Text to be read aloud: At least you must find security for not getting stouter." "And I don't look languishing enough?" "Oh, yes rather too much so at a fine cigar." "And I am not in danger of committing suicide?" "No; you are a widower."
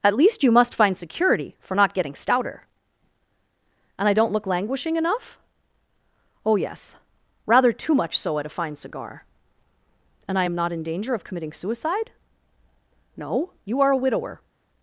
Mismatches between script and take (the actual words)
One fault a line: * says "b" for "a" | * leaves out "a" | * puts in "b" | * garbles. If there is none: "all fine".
all fine